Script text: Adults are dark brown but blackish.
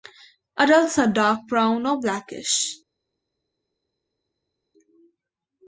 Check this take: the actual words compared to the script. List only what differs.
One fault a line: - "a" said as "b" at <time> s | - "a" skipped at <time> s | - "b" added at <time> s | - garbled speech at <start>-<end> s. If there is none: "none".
- "but" said as "or" at 1.9 s